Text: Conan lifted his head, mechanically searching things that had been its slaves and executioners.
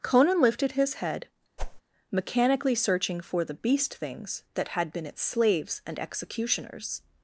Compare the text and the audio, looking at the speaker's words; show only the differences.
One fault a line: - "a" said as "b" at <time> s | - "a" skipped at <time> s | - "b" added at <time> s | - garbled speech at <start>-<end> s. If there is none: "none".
- "for the beast" added at 3.2 s